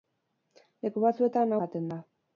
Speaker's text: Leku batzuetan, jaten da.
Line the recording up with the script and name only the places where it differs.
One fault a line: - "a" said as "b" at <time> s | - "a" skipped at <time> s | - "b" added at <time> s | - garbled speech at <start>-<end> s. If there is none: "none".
none